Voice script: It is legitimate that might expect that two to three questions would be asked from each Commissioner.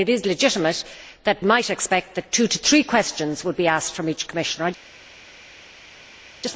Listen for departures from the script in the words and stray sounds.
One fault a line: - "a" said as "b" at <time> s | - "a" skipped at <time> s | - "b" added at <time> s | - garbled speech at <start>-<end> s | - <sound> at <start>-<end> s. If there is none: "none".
none